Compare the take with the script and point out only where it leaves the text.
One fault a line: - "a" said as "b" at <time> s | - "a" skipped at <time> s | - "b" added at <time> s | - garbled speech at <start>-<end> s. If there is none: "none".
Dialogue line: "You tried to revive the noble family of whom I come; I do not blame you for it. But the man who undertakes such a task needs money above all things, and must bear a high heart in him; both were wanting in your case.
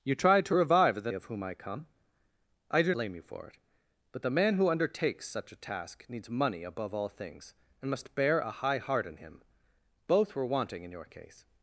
- "noble family" skipped at 1.1 s
- "not" skipped at 2.9 s